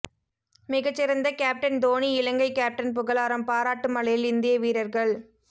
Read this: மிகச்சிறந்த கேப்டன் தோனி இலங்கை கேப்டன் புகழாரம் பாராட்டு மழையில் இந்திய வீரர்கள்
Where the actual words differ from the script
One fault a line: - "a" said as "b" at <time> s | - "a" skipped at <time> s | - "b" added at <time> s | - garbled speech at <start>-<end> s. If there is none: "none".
none